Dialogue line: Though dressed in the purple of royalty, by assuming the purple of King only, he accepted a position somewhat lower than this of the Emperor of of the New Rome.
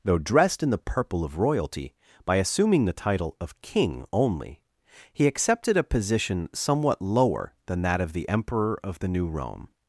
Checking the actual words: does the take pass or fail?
fail